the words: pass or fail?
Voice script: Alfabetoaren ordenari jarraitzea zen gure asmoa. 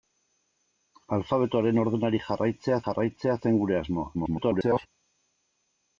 fail